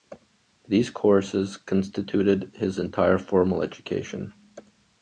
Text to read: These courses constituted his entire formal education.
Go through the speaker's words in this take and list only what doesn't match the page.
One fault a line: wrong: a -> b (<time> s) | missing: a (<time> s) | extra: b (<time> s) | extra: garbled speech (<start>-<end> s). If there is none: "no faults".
no faults